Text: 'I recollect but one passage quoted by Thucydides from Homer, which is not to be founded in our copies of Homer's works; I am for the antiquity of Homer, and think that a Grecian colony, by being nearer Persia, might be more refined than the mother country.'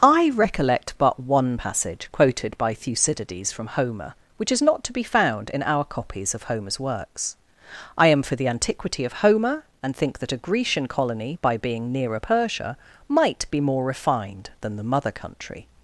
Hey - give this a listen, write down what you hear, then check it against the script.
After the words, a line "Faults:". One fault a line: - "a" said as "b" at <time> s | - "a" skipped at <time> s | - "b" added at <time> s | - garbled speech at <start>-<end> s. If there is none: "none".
'I recollect but one passage quoted by Thucydides from Homer, which is not to be found in our copies of Homer's works; I am for the antiquity of Homer, and think that a Grecian colony, by being nearer Persia, might be more refined than the mother country.'
Faults:
- "founded" said as "found" at 5.0 s